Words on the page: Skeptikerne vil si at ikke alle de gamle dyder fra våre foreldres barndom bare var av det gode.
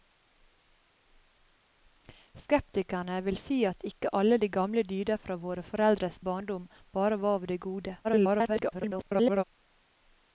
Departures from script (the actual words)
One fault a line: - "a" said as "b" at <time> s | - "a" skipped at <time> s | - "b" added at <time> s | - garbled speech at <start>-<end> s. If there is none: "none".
- garbled speech at 8.0-9.4 s